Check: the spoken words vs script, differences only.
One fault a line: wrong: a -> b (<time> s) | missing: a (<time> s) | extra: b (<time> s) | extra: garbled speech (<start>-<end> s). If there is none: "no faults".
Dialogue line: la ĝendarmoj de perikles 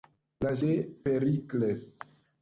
missing: ĝendarmoj (0.5 s)